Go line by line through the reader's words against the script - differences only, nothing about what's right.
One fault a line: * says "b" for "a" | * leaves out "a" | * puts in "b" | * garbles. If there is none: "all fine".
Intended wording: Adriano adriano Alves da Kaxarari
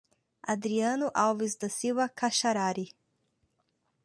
* leaves out "adriano"
* puts in "Silva"